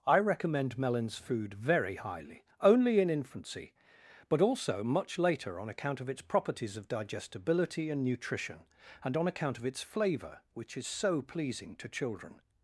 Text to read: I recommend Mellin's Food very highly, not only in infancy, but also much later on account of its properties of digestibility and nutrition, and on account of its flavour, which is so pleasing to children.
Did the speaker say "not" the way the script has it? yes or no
no